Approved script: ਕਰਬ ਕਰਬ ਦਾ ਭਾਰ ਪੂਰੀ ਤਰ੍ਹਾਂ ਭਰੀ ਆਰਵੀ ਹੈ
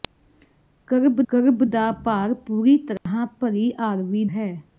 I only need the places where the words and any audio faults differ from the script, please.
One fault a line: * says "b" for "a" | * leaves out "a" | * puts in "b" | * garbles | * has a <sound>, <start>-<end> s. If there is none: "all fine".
* has a dropout, 3.0-3.1 s